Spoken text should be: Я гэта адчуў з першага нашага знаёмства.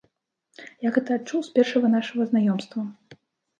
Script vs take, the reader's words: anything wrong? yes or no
no